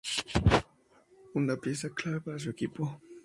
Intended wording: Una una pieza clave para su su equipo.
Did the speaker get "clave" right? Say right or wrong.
right